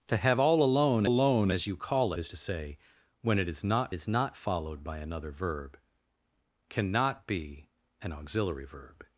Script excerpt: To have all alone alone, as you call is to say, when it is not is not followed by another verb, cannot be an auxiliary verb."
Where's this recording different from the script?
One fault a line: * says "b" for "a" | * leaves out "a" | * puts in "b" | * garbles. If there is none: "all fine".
all fine